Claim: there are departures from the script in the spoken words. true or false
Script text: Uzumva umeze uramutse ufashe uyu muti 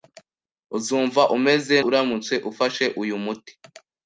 false